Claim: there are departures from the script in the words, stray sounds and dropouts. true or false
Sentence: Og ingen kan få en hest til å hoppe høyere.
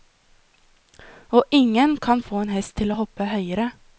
false